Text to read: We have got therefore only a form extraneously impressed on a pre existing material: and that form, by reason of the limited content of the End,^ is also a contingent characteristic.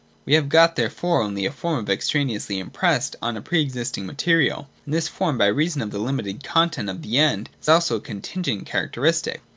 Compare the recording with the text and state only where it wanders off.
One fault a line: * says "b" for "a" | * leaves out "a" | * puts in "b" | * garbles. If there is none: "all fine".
* says "this" for "that"